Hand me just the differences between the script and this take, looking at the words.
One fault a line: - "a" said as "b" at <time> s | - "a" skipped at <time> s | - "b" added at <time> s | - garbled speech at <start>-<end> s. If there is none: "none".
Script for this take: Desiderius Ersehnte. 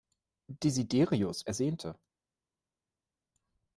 none